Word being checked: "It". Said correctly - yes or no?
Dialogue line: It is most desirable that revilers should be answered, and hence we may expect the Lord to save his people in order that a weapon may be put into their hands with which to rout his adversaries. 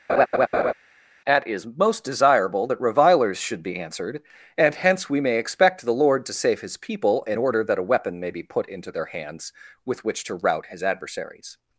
no